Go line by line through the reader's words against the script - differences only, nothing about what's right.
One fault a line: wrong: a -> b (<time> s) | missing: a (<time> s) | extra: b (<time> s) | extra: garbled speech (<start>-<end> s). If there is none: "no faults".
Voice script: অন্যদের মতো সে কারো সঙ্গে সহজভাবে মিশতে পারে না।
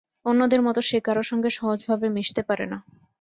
no faults